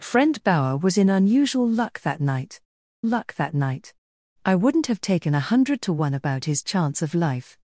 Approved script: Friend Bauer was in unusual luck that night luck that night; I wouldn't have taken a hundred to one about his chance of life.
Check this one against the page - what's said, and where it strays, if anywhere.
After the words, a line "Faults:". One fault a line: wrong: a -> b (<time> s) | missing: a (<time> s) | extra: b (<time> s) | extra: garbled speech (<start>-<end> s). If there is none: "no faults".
Friend Bauer was in unusual luck that night luck that night; I wouldn't have taken a hundred to one about his chance of life.
Faults:
no faults